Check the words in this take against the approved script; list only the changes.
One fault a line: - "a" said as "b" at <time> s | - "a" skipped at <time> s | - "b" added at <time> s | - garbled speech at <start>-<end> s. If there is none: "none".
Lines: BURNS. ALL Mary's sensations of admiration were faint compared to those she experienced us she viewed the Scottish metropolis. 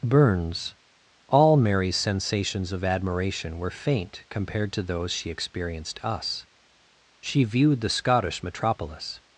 none